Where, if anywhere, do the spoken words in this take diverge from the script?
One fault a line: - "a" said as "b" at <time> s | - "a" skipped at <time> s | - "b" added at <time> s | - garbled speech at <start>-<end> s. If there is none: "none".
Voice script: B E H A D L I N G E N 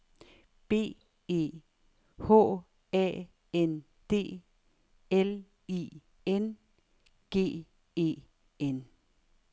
- "N" added at 3.5 s